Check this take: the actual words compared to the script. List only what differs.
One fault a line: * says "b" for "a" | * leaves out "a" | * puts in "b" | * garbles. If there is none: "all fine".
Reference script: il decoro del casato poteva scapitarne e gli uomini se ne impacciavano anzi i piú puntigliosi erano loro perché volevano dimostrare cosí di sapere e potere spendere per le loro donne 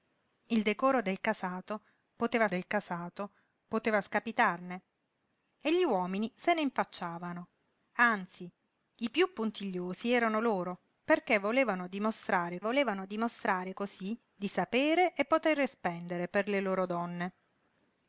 * puts in "del casato poteva"
* puts in "volevano dimostrare"